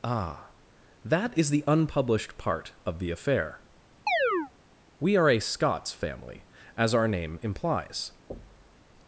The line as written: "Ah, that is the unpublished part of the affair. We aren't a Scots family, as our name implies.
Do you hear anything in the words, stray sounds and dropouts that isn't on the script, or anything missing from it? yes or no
yes